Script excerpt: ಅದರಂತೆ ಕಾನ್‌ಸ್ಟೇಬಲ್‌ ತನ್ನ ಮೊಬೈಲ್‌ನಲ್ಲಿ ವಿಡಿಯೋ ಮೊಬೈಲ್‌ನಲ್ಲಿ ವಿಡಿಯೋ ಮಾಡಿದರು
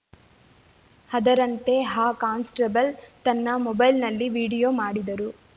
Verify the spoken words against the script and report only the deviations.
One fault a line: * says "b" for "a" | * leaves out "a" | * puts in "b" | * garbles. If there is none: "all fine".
* puts in "ಆ"
* leaves out "ಮೊಬೈಲ್‌ನಲ್ಲಿ ವಿಡಿಯೋ"